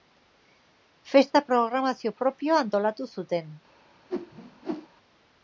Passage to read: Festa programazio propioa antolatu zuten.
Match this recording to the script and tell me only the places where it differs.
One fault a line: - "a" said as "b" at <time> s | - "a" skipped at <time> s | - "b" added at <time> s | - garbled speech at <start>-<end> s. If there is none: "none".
none